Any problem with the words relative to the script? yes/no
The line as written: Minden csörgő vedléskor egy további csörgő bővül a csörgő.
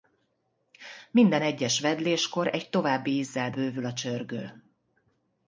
yes